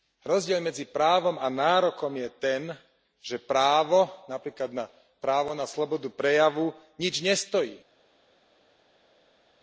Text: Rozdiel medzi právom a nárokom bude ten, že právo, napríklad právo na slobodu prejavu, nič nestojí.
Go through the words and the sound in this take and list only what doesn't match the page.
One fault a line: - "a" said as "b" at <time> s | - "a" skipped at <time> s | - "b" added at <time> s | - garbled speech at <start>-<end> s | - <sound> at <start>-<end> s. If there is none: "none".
- "bude" said as "je" at 2.2 s